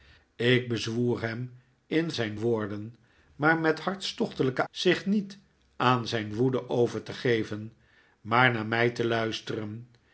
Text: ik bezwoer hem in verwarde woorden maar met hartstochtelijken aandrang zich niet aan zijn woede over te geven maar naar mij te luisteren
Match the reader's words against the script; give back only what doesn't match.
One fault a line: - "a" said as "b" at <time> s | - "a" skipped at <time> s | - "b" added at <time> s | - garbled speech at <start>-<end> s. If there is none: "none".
- "verwarde" said as "zijn" at 2.1 s
- "aandrang" skipped at 4.7 s